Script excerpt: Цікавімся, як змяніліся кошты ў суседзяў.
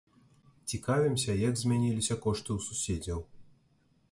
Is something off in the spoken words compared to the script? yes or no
no